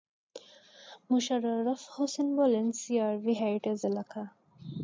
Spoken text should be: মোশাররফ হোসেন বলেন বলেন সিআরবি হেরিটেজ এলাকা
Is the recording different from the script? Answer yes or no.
yes